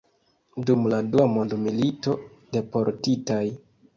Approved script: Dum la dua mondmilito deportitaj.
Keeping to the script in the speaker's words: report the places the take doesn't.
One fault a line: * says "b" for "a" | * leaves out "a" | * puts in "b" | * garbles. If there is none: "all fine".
all fine